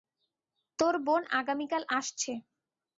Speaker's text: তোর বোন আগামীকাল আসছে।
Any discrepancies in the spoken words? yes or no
no